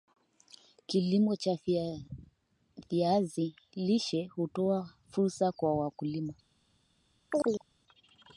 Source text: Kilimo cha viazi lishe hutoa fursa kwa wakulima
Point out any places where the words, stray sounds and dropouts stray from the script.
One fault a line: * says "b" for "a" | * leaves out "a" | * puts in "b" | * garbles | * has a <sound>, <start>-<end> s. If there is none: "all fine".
* has a chirp, 7.3-7.6 s